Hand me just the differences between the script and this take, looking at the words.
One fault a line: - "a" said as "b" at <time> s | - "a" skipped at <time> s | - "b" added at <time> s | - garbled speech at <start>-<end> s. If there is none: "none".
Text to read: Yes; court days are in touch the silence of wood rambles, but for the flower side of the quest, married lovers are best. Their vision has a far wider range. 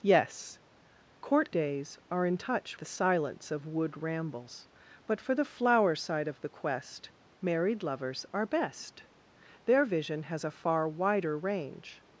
none